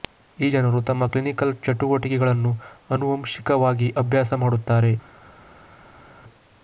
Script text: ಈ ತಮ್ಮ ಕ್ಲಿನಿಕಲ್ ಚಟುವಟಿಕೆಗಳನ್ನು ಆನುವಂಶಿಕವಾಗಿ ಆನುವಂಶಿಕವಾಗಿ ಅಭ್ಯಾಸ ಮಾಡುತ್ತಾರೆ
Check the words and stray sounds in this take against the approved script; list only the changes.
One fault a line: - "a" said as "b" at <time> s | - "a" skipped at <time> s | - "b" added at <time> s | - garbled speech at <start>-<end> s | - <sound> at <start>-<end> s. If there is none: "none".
- "ಜನರು" added at 0.5 s
- "ಆನುವಂಶಿಕವಾಗಿ" skipped at 3.9 s